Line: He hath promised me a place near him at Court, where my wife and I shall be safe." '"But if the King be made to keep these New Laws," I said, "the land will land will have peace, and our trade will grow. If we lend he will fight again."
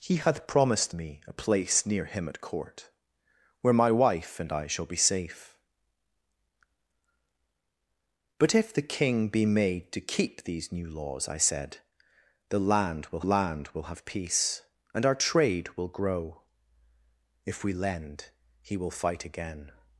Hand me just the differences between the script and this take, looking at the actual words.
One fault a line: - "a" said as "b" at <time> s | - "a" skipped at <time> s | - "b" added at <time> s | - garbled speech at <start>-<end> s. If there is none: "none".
none